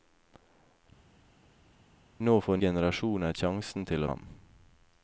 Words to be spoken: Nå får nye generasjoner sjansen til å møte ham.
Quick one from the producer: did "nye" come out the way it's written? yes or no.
no